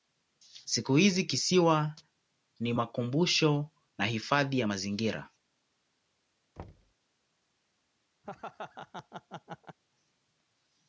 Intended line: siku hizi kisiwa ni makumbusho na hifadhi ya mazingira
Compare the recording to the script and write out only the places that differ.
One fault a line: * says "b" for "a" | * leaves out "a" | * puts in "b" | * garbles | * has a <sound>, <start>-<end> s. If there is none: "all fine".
* has a thud, 6.6-6.9 s
* has a laugh, 8.2-9.8 s